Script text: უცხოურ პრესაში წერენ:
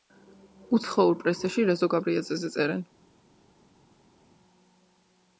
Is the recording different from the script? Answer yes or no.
yes